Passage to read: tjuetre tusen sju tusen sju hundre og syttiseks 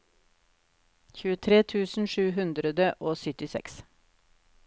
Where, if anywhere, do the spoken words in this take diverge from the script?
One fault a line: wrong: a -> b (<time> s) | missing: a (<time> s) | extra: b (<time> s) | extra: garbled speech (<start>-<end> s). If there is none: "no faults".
missing: tusen sju (2.2 s)